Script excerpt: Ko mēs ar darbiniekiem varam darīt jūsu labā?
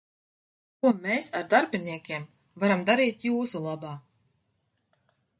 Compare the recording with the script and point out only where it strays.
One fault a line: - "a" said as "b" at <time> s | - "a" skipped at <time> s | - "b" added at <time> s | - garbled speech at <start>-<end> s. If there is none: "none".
none